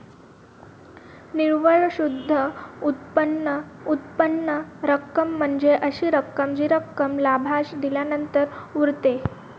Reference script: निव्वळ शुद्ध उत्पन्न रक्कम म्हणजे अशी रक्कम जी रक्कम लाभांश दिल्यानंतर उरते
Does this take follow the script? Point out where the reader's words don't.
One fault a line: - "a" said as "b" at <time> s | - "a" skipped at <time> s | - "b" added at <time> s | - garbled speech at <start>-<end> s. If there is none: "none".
- "उत्पन्न" added at 3.9 s